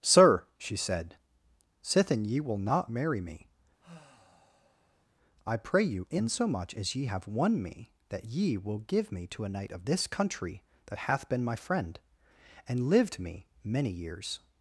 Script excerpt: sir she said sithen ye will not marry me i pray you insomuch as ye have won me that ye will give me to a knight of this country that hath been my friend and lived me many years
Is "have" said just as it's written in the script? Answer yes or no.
yes